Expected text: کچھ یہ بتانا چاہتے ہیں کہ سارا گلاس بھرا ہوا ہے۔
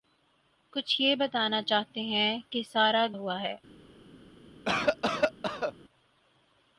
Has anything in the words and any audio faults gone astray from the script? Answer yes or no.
yes